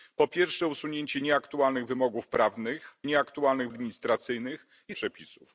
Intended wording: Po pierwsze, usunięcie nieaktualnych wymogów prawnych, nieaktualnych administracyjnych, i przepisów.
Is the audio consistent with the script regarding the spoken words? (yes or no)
yes